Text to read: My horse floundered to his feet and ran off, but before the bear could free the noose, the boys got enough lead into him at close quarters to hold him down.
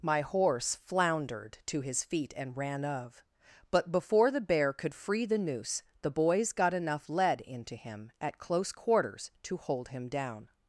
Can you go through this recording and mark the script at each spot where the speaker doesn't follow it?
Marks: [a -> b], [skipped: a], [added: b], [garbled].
My horse floundered to his feet and ran [off, -> of] but before the bear could free the noose, the boys got enough lead into him at close quarters to hold him down.